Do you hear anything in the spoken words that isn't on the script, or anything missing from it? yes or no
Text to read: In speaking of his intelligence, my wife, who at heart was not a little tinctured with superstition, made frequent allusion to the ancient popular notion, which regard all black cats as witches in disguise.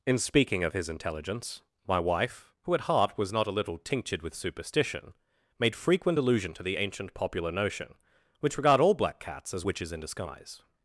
no